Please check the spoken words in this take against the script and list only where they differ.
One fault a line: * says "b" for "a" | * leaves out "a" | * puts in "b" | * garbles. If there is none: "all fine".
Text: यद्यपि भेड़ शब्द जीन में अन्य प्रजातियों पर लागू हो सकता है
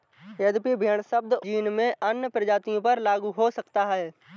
all fine